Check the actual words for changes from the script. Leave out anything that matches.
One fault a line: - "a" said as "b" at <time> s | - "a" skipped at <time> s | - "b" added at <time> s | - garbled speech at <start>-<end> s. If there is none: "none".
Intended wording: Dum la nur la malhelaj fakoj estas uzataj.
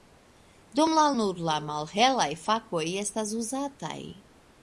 none